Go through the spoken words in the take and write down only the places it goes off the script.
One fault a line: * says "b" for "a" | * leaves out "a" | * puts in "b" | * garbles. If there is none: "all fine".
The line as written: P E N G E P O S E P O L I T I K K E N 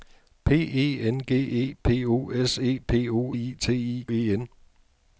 * leaves out "L"
* leaves out "K K"